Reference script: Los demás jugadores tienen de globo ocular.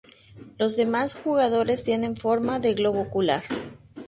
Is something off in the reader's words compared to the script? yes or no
yes